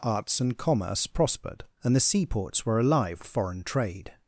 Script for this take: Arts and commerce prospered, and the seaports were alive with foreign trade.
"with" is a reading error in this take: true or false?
true